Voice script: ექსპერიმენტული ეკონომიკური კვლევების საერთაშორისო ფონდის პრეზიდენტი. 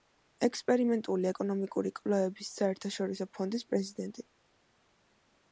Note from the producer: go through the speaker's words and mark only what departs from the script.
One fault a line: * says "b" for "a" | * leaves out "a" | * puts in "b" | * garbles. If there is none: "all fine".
all fine